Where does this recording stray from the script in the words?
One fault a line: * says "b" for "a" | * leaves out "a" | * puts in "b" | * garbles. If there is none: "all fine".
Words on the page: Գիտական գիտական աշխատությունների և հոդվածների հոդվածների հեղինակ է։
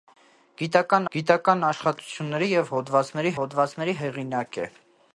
all fine